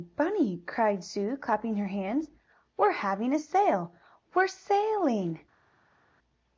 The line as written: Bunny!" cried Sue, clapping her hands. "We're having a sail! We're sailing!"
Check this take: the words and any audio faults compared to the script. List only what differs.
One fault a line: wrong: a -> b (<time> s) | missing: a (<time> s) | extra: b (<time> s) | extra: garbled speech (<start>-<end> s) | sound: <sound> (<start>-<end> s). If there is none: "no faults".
no faults